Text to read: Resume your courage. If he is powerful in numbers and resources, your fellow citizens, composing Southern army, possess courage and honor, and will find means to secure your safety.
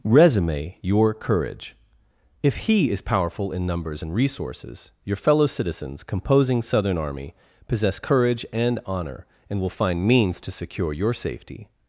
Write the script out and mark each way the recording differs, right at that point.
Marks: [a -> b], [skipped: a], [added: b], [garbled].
Resume your courage. If he is powerful in numbers and resources, your fellow citizens, composing Southern army, possess courage and honor, and will find means to secure your safety.